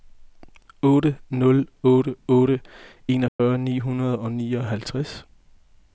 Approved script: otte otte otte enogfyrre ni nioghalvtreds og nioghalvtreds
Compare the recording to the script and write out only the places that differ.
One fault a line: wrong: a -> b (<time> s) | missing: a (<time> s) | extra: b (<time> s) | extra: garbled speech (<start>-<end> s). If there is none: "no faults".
extra: nul (1.4 s)
wrong: nioghalvtreds -> hundrede (3.8 s)